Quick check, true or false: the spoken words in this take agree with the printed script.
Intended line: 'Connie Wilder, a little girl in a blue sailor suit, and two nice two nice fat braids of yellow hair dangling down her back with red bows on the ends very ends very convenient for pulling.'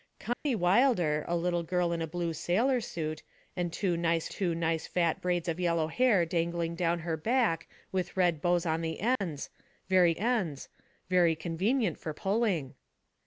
true